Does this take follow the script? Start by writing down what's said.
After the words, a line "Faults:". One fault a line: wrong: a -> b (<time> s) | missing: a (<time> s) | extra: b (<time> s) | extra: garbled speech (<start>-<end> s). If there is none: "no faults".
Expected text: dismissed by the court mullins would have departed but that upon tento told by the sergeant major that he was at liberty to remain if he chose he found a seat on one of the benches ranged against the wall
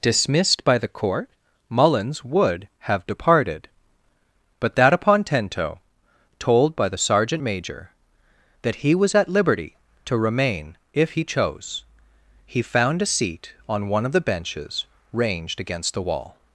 dismissed by the court mullins would have departed but that upon tento told by the sergeant major that he was at liberty to remain if he chose he found a seat on one of the benches ranged against the wall
Faults:
no faults